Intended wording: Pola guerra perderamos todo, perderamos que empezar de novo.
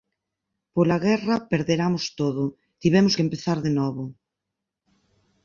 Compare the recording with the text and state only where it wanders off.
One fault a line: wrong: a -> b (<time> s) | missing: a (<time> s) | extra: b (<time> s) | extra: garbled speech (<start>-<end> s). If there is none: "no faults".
wrong: perderamos -> tivemos (2.8 s)